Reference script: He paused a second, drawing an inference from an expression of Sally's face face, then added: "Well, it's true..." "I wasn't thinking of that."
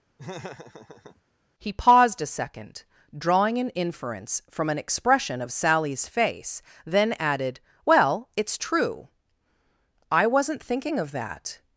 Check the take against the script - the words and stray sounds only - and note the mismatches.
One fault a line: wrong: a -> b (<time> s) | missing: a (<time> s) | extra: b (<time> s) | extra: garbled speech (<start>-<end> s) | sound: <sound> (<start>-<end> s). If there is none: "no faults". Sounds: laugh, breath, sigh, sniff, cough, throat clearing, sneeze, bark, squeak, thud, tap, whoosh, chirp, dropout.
sound: laugh (0.2-1.2 s)
missing: face (6.6 s)